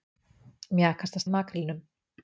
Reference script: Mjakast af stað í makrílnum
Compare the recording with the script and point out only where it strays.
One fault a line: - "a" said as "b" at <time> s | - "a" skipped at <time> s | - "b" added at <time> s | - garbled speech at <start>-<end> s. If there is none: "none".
- "stað" skipped at 1.2 s